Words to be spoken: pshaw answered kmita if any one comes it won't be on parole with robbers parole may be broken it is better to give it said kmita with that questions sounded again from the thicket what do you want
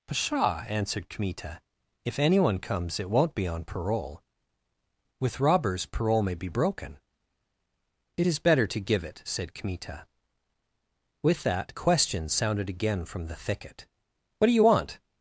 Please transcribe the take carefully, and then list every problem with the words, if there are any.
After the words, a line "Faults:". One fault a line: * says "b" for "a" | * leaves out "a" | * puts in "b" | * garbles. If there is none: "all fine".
pshaw answered kmita if any one comes it won't be on parole with robbers parole may be broken it is better to give it said kmita with that questions sounded again from the thicket what do you want
Faults:
all fine